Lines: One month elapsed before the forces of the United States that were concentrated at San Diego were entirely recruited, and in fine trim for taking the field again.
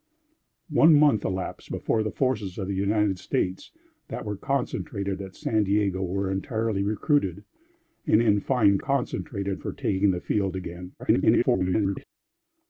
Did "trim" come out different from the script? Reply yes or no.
yes